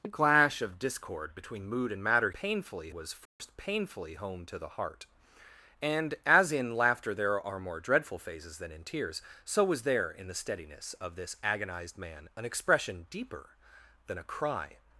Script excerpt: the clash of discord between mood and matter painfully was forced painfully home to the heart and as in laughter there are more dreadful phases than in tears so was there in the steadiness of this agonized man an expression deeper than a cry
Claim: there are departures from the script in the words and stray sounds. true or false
true